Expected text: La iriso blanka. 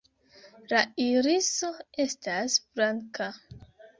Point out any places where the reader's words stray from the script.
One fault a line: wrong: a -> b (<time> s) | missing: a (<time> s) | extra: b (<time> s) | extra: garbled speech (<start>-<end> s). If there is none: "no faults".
extra: estas (2.0 s)